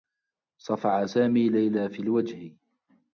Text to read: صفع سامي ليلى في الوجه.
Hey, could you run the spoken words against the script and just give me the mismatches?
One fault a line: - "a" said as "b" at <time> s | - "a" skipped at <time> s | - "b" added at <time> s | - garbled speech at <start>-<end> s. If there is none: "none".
none